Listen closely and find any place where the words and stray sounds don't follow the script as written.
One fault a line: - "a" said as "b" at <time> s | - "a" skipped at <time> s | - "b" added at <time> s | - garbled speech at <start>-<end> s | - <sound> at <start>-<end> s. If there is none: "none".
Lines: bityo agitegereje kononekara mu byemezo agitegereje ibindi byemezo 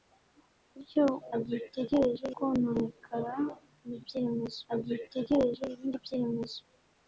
none